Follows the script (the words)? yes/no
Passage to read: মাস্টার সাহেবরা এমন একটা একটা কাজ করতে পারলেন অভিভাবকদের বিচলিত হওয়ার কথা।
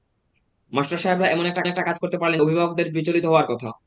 yes